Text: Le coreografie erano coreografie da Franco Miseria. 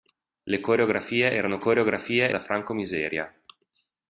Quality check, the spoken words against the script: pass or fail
pass